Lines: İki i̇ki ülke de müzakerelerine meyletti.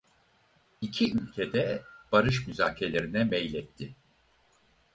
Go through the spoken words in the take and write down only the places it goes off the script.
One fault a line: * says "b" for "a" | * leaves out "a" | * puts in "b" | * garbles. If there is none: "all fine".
* leaves out "i̇ki"
* puts in "barış"